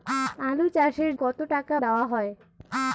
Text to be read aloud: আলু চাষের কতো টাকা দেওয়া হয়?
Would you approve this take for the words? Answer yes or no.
yes